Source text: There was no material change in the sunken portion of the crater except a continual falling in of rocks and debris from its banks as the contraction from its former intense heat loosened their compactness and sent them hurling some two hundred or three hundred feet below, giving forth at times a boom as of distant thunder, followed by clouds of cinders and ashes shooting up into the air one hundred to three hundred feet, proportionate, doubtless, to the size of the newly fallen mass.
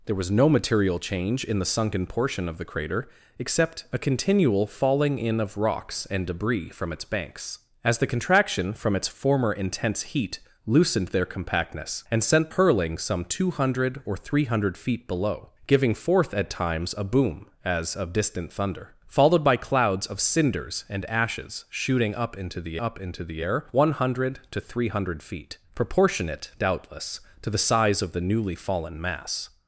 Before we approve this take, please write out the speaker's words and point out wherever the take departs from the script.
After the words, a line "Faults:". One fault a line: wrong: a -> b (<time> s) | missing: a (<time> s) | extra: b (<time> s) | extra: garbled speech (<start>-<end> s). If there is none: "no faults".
There was no material change in the sunken portion of the crater except a continual falling in of rocks and debris from its banks as the contraction from its former intense heat loosened their compactness and sent hurling some two hundred or three hundred feet below, giving forth at times a boom as of distant thunder, followed by clouds of cinders and ashes shooting up into the up into the air one hundred to three hundred feet, proportionate, doubtless, to the size of the newly fallen mass.
Faults:
missing: them (12.5 s)
extra: up into the (22.8 s)